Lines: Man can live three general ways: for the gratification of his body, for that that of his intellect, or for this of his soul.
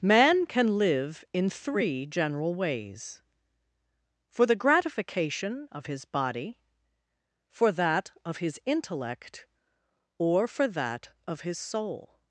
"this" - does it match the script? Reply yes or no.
no